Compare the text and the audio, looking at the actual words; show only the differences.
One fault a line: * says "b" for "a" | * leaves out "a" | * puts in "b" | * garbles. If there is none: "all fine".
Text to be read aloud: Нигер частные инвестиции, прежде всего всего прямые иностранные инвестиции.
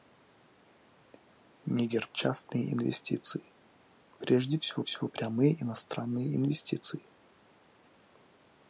all fine